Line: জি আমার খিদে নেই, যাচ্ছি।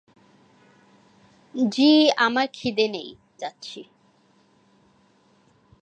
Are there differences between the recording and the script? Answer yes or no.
no